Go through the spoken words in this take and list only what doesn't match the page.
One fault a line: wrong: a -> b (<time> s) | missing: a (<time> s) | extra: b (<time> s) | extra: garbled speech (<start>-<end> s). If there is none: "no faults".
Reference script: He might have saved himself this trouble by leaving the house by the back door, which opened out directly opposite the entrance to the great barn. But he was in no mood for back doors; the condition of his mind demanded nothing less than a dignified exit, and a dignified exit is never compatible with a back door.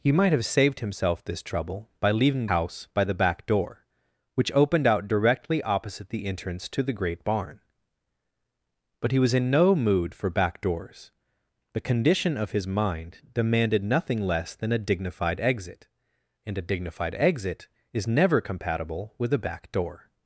missing: the (2.5 s)